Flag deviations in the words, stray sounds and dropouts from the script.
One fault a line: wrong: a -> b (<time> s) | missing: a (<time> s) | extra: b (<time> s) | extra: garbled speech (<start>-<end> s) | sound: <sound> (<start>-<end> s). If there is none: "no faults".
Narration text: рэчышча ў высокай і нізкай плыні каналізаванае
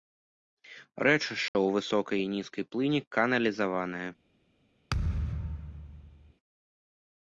sound: dropout (1.5-1.5 s)
sound: thud (4.9-6.3 s)